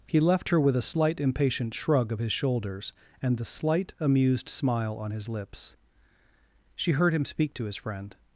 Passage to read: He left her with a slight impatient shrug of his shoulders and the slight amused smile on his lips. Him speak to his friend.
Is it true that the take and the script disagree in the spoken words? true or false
true